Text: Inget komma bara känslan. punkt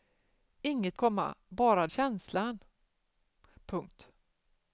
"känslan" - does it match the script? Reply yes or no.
yes